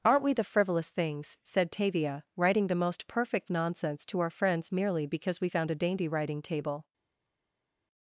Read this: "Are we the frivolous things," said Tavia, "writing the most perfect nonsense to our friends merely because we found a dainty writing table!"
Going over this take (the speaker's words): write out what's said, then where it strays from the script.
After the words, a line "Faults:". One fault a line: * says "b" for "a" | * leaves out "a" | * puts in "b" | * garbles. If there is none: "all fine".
"Aren't we the frivolous things," said Tavia, "writing the most perfect nonsense to our friends merely because we found a dainty writing table!"
Faults:
* says "Aren't" for "Are"